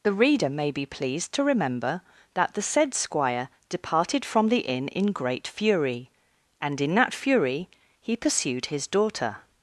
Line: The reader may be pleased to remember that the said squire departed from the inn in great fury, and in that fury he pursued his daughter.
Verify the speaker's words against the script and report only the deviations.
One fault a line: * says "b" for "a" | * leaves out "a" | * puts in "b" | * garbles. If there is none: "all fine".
all fine